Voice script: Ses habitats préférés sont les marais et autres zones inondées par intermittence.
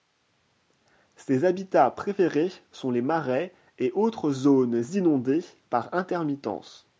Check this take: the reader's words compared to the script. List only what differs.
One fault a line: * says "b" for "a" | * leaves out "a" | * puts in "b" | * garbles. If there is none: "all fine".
all fine